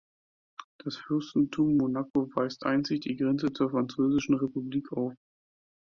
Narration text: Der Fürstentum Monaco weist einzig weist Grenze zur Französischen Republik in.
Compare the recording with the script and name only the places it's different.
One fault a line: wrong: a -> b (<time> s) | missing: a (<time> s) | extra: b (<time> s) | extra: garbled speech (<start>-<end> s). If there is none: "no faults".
wrong: Der -> Das (0.8 s)
wrong: weist -> die (3.0 s)
wrong: in -> auf (4.9 s)